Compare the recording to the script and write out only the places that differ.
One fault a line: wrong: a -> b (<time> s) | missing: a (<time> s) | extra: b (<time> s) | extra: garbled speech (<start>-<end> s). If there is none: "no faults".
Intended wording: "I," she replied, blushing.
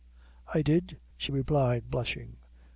extra: did (0.6 s)